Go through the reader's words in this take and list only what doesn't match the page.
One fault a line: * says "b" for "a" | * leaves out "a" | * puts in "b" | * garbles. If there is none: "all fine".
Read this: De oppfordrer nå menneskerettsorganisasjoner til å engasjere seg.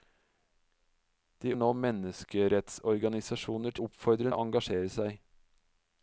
* leaves out "oppfordrer"
* says "oppfordrer" for "til"